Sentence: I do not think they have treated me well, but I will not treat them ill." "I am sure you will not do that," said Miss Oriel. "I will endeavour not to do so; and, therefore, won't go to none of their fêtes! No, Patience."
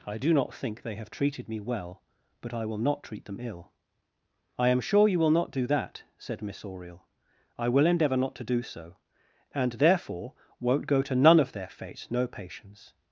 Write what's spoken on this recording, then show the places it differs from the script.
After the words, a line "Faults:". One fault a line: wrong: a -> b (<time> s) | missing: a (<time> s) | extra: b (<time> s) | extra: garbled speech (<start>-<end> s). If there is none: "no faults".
I do not think they have treated me well, but I will not treat them ill." "I am sure you will not do that," said Miss Oriel. "I will endeavour not to do so; and, therefore, won't go to none of their fêtes! No, Patience."
Faults:
no faults